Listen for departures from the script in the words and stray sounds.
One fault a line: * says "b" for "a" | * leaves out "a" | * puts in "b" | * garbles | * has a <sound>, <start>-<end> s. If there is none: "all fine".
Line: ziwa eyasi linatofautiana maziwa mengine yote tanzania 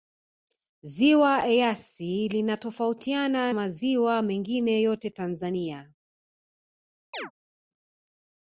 * has a chirp, 7.1-7.3 s